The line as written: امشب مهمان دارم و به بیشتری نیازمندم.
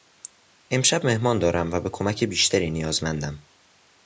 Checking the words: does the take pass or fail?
fail